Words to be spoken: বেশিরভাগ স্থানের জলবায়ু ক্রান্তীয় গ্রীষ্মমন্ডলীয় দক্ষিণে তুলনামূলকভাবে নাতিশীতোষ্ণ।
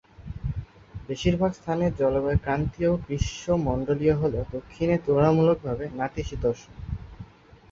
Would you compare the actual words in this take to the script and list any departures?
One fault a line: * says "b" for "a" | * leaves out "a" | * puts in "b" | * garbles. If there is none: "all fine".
* puts in "হলেও"